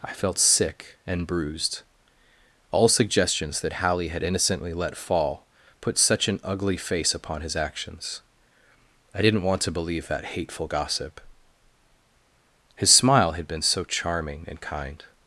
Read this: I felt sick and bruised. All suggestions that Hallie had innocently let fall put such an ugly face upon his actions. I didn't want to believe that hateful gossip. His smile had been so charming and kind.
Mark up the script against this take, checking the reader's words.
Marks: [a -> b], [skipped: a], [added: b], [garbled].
I felt sick and bruised. All suggestions that Hallie had innocently let fall put such an ugly face upon his actions. I didn't want to believe that hateful gossip. His smile had been so charming and kind.